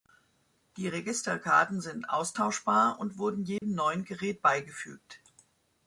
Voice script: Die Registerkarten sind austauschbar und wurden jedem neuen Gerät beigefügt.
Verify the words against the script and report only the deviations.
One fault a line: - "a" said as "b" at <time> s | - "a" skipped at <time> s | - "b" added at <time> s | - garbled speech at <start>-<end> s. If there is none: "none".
none